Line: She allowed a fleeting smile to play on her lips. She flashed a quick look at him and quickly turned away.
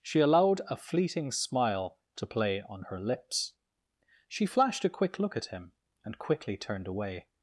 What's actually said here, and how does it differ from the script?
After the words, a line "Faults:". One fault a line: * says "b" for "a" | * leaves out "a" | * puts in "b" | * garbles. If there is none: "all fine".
She allowed a fleeting smile to play on her lips. She flashed a quick look at him and quickly turned away.
Faults:
all fine